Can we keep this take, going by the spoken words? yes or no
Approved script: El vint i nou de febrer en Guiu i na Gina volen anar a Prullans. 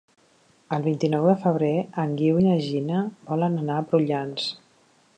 yes